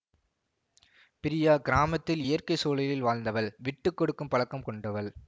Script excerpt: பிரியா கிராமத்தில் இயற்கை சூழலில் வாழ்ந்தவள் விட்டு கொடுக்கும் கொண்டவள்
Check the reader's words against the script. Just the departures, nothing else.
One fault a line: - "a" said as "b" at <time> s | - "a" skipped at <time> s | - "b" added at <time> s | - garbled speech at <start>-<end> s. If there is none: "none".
- "பழக்கம்" added at 4.3 s